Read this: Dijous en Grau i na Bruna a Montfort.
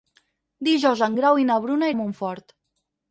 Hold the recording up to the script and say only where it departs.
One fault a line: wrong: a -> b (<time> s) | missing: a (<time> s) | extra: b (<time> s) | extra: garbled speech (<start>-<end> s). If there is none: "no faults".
no faults